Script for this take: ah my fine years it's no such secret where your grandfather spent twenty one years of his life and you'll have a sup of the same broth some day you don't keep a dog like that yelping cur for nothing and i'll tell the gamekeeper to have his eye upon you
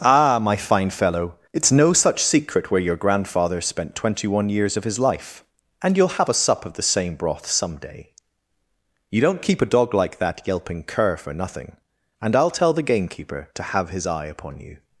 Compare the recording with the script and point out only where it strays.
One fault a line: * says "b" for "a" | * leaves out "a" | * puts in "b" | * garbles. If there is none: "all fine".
* says "fellow" for "years"